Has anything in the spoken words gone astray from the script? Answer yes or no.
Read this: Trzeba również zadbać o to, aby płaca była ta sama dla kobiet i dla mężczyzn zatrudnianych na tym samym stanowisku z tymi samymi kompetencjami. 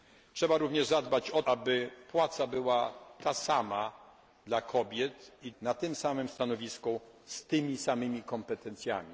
yes